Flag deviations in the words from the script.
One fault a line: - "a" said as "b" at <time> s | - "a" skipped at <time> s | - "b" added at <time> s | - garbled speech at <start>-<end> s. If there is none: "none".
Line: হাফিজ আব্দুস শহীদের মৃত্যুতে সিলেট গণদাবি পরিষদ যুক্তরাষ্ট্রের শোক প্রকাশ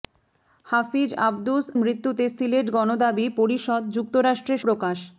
- "শহীদের" skipped at 1.6 s
- "শোক" skipped at 4.6 s